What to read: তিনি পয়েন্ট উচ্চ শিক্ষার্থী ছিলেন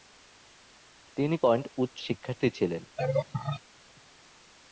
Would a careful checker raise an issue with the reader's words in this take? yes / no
no